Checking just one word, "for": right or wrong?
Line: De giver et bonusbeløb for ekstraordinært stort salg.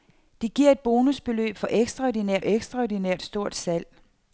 right